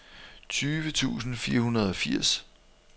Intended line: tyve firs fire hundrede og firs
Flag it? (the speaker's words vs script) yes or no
yes